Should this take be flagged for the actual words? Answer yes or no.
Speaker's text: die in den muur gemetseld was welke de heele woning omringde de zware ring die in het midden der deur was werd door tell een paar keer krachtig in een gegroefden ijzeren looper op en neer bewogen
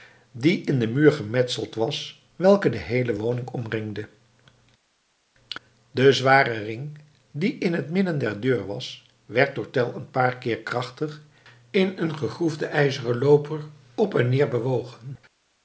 no